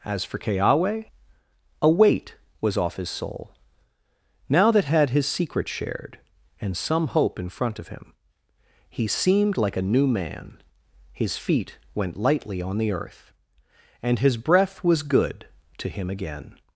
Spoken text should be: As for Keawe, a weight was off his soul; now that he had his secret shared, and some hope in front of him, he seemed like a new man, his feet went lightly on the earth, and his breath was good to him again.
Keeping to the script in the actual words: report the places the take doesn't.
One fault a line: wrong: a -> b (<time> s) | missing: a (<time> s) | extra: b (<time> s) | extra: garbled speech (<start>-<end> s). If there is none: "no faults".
missing: he (4.8 s)